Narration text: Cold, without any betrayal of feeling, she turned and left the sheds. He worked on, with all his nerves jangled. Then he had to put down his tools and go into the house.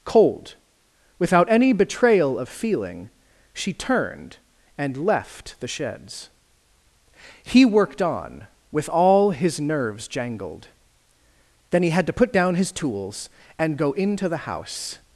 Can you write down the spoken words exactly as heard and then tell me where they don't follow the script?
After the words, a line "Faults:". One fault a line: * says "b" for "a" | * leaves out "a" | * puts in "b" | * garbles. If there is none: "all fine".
Cold, without any betrayal of feeling, she turned and left the sheds. He worked on, with all his nerves jangled. Then he had to put down his tools and go into the house.
Faults:
all fine